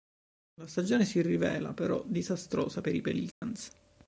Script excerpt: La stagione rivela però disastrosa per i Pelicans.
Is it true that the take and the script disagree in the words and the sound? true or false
true